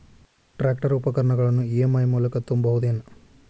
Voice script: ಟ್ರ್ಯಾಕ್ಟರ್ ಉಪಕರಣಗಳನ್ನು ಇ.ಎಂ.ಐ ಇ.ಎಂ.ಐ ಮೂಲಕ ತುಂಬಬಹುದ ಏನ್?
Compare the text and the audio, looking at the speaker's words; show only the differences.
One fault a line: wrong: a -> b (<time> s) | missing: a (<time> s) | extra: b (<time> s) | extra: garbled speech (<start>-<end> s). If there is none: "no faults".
missing: ಇ.ಎಂ.ಐ (2.0 s)